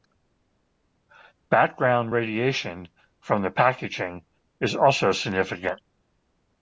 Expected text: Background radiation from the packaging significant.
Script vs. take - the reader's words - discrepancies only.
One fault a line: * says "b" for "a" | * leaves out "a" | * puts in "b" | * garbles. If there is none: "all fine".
* puts in "is also"